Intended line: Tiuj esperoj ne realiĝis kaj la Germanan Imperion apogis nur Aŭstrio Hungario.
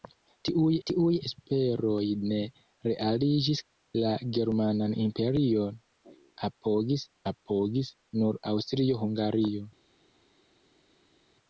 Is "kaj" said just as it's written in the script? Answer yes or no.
no